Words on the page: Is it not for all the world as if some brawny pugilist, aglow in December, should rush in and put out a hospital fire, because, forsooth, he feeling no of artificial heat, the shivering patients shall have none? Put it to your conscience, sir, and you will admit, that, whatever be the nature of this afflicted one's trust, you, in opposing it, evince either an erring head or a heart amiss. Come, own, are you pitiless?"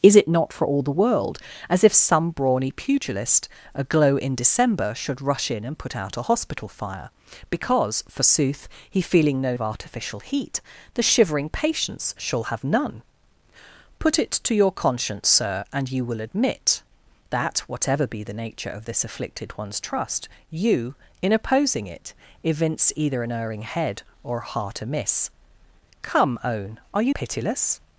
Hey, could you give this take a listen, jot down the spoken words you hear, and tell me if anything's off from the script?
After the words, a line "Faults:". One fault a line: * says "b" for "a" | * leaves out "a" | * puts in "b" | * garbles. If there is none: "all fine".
Is it not for all the world as if some brawny pugilist, aglow in December, should rush in and put out a hospital fire, because, forsooth, he feeling no of artificial heat, the shivering patients shall have none? Put it to your conscience, sir, and you will admit, that, whatever be the nature of this afflicted one's trust, you, in opposing it, evince either an erring head or a heart amiss. Come, own, are you pitiless?"
Faults:
all fine